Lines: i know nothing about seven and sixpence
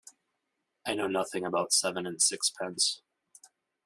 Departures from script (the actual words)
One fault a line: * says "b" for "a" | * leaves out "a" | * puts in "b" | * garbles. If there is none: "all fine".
all fine